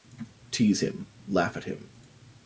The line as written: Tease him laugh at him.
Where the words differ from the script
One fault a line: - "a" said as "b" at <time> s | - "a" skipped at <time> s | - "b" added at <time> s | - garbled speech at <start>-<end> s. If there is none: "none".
none